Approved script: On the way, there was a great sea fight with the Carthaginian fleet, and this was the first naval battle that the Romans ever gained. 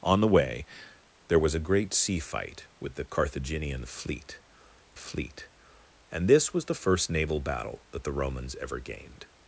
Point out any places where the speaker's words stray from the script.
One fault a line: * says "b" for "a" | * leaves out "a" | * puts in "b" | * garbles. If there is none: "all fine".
* puts in "fleet"